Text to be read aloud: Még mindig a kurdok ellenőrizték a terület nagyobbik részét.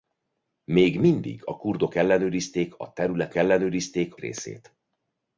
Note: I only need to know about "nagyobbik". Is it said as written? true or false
false